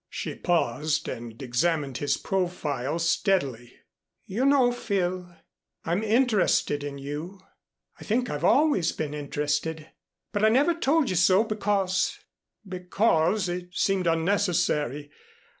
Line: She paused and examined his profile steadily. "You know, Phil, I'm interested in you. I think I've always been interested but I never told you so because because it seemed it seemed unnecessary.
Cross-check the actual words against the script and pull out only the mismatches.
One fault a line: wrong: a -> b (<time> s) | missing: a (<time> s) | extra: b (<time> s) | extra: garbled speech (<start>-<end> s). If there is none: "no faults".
missing: it seemed (14.1 s)